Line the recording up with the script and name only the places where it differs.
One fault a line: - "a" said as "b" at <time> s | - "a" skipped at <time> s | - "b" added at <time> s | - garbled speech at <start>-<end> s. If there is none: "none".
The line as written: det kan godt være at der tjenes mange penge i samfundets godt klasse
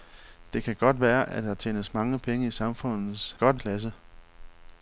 none